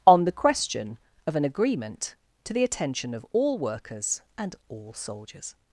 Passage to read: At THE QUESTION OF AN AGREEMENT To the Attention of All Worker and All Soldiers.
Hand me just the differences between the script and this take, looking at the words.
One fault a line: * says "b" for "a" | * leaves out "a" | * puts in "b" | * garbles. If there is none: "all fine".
* says "ON" for "At"
* says "Workers" for "Worker"